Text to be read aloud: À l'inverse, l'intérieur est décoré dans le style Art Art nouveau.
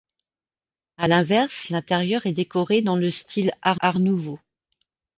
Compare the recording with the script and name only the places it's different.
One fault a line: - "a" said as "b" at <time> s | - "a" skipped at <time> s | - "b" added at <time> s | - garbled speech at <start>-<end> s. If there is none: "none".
none